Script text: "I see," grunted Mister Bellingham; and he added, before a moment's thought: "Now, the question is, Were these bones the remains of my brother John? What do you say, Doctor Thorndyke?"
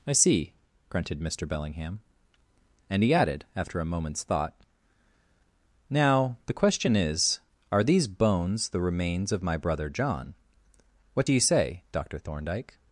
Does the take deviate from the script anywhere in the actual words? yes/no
yes